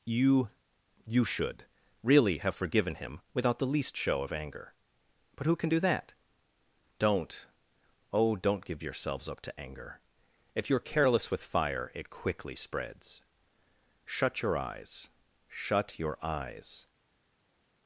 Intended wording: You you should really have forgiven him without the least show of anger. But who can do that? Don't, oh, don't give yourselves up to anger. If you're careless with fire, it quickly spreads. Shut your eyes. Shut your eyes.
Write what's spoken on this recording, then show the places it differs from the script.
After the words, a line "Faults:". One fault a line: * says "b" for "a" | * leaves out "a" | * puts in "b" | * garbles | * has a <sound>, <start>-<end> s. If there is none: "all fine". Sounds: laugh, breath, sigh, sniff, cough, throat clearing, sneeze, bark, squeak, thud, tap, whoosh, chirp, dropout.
You you should really have forgiven him without the least show of anger. But who can do that? Don't, oh, don't give yourselves up to anger. If you're careless with fire, it quickly spreads. Shut your eyes. Shut your eyes.
Faults:
all fine